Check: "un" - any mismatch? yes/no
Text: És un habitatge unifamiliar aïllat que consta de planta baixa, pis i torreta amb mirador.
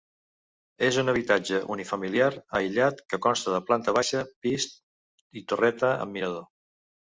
no